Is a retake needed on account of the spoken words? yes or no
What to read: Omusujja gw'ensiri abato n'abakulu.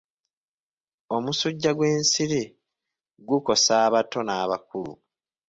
yes